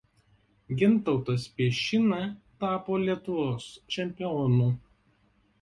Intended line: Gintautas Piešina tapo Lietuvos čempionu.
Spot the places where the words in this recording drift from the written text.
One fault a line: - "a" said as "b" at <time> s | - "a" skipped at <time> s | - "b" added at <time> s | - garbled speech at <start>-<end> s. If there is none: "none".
none